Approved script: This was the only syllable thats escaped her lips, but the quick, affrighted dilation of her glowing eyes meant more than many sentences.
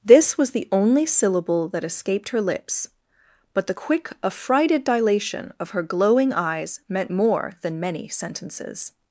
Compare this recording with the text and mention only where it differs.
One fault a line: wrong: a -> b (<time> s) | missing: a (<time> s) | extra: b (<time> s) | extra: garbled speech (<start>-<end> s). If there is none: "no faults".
wrong: thats -> that (1.7 s)